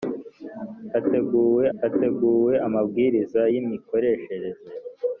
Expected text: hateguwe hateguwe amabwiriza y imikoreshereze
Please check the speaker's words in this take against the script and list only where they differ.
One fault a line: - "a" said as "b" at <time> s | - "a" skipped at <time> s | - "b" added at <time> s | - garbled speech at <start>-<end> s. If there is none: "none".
none